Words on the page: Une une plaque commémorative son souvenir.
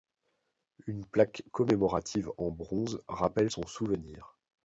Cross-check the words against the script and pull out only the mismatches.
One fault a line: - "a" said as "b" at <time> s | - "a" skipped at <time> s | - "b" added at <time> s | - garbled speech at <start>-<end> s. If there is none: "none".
- "une" skipped at 1.0 s
- "en bronze rappelle" added at 2.4 s